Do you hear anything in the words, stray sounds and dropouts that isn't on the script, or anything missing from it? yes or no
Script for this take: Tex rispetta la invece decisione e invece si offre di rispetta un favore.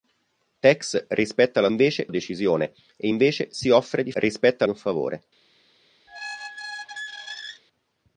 yes